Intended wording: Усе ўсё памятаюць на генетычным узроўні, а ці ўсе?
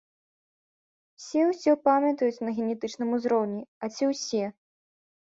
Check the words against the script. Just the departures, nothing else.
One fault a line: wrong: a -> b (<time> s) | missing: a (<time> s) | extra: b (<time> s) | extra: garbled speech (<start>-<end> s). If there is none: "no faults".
no faults